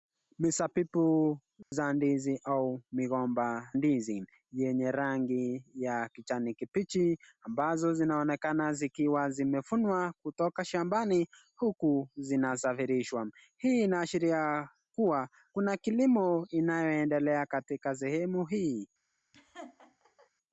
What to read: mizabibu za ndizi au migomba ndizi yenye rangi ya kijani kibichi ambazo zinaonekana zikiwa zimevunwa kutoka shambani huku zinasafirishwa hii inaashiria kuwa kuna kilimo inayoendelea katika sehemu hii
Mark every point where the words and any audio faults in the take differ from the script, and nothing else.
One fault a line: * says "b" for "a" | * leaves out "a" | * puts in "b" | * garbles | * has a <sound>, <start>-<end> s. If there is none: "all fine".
* has a dropout, 1.6-1.7 s
* has a laugh, 19.3-20.3 s